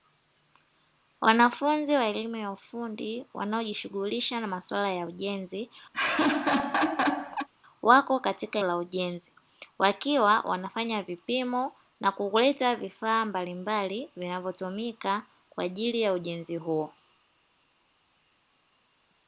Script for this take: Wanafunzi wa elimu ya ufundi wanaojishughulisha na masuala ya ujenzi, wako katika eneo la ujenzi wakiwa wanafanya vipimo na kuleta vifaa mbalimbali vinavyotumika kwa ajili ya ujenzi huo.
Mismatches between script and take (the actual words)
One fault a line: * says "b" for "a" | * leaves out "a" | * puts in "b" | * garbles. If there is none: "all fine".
* leaves out "eneo"